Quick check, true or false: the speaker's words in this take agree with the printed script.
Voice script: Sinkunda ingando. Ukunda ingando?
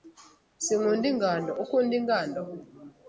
true